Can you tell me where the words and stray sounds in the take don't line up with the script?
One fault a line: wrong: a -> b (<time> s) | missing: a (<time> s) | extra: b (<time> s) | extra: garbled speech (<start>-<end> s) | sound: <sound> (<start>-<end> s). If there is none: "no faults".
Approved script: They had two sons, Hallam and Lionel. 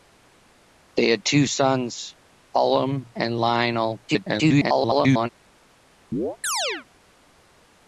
extra: garbled speech (4.1-5.3 s)
sound: chirp (6.1-6.9 s)